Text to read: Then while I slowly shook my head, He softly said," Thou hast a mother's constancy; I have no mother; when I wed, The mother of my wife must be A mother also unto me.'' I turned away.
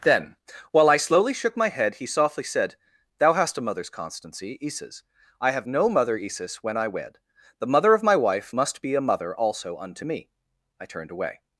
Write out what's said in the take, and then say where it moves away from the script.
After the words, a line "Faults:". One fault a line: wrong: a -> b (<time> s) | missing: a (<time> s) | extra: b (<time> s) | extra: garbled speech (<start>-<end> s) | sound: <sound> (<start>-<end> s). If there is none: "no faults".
Then while I slowly shook my head, He softly said," Thou hast a mother's constancy; isis I have no mother; isis when I wed, The mother of my wife must be A mother also unto me.'' I turned away.
Faults:
extra: isis (4.6 s)
extra: isis (6.2 s)